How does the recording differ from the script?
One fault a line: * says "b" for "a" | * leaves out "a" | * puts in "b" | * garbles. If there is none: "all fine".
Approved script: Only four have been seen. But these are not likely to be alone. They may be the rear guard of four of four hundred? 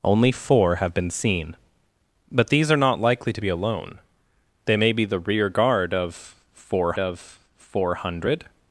all fine